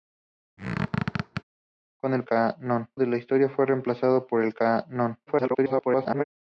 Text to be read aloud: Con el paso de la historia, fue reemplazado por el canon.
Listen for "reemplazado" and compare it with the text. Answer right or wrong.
right